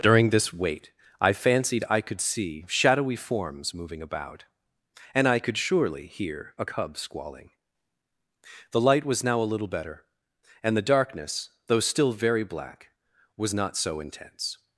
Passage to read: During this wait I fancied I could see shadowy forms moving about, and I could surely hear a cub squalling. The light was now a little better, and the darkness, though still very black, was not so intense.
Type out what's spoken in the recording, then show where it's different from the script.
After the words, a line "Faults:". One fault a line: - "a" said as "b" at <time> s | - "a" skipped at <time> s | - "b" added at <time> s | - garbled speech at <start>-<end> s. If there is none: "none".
During this wait I fancied I could see shadowy forms moving about, and I could surely hear a cub squalling. The light was now a little better, and the darkness, though still very black, was not so intense.
Faults:
none